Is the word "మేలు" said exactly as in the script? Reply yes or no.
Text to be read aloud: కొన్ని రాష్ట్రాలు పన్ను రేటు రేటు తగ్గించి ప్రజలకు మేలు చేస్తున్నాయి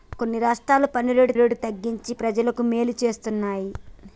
yes